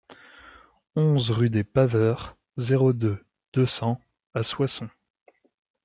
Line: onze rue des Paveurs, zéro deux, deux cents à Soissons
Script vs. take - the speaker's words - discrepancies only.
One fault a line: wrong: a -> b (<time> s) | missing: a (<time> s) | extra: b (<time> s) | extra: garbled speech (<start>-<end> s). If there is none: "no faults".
no faults